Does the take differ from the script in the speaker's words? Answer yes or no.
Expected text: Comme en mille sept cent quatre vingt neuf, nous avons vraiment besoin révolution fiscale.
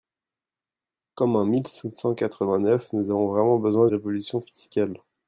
no